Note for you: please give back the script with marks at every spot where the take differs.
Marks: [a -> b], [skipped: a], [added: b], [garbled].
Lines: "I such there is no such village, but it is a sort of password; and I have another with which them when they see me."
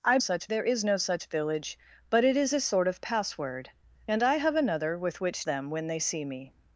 "I such there is no such village, but it is a sort of password; and I have another with which them when they see me."